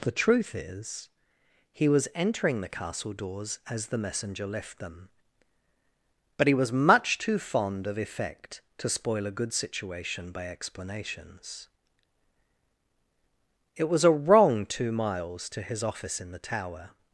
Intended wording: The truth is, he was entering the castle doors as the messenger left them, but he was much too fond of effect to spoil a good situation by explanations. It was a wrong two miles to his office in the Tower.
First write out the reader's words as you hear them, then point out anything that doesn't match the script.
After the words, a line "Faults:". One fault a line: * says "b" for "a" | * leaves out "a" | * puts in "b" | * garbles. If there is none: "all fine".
The truth is, he was entering the castle doors as the messenger left them, but he was much too fond of effect to spoil a good situation by explanations. It was a wrong two miles to his office in the Tower.
Faults:
all fine